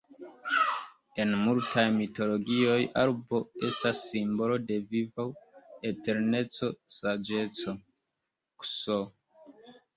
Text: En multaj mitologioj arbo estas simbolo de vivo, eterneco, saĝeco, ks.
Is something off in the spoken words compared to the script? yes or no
no